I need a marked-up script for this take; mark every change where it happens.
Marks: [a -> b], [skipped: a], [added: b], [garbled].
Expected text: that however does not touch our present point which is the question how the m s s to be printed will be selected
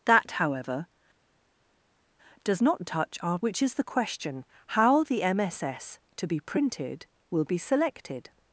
that however does not touch our [skipped: present point] which is the question how the m s s to be printed will be selected